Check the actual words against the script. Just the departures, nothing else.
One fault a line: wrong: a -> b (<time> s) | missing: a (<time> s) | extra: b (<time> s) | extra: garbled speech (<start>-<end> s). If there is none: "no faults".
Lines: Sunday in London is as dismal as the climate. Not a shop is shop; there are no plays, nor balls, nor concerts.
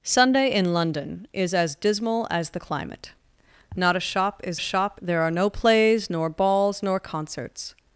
no faults